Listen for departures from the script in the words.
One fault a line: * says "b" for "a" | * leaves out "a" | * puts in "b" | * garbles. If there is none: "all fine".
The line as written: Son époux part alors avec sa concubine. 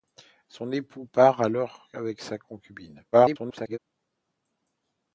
* garbles